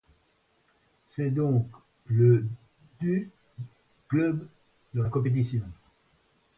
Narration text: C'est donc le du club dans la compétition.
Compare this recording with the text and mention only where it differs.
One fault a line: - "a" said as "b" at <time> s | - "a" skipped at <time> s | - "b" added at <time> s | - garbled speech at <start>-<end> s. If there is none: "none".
none